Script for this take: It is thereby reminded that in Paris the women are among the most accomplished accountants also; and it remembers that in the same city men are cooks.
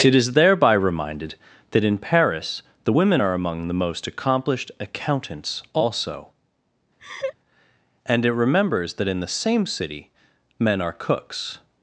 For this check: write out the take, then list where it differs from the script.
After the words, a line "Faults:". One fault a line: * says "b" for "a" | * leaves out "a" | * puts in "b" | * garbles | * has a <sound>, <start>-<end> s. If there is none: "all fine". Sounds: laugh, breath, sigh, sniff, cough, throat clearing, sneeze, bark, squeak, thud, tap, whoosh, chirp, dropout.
It is thereby reminded that in Paris the women are among the most accomplished accountants also; and it remembers that in the same city men are cooks.
Faults:
* has a laugh, 7.0-7.4 s